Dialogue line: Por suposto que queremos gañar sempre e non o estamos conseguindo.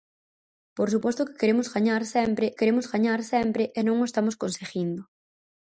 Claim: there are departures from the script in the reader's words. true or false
true